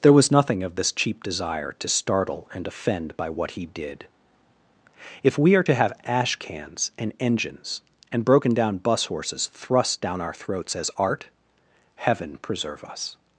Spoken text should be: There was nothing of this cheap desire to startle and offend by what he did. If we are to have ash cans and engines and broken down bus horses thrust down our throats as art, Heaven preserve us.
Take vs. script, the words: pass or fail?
pass